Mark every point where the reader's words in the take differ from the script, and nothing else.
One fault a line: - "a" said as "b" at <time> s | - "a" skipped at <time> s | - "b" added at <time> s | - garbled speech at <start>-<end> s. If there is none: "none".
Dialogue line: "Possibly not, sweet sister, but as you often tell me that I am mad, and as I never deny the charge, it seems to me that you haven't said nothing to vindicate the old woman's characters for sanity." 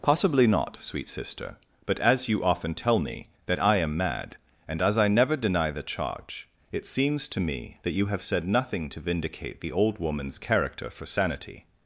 - "haven't" said as "have" at 8.1 s
- "characters" said as "character" at 10.4 s